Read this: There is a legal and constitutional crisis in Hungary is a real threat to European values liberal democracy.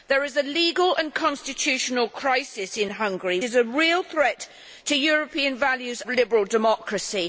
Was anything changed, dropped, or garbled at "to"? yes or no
no